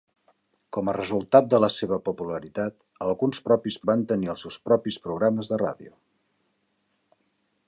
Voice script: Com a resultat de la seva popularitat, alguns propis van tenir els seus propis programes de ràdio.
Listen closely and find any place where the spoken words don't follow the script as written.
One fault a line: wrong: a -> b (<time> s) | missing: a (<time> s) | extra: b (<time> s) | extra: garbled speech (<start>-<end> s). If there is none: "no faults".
no faults